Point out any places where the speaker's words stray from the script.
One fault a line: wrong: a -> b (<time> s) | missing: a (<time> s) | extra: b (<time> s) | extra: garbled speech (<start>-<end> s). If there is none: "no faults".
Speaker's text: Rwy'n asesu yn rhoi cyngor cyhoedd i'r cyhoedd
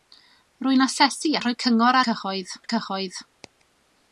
no faults